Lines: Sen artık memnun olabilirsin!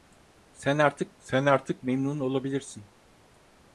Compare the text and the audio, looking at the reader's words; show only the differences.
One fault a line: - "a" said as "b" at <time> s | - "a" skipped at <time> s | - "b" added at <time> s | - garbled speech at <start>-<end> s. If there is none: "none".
- "sen artık" added at 1.2 s